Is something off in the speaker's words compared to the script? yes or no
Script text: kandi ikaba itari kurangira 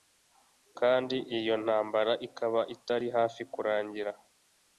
yes